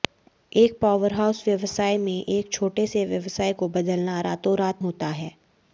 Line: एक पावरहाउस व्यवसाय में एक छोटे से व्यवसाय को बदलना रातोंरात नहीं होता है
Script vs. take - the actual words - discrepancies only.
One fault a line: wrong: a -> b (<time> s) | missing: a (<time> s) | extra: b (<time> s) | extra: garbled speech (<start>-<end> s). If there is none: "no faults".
missing: नहीं (4.8 s)